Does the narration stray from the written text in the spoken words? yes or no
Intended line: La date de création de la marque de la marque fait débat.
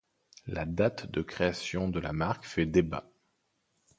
yes